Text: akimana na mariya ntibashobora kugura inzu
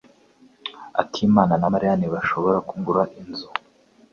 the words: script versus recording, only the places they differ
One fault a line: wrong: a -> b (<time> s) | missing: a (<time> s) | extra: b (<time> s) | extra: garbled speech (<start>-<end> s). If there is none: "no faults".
no faults